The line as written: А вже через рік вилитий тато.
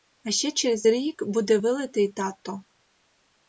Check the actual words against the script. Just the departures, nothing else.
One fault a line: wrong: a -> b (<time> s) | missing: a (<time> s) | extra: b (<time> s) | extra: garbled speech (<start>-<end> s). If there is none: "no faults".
wrong: вже -> ще (0.3 s)
extra: буде (1.3 s)